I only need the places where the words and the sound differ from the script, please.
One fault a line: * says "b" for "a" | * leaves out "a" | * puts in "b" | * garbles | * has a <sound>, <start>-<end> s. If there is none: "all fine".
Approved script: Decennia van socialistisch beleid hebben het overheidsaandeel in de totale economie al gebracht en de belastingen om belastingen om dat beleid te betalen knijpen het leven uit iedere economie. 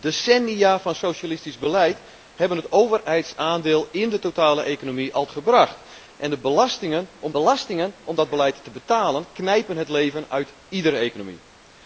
all fine